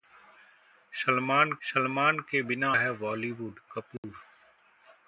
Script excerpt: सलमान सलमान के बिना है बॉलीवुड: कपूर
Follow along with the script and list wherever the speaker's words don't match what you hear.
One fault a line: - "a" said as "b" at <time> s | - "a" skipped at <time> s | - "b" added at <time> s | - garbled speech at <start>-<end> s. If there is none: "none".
none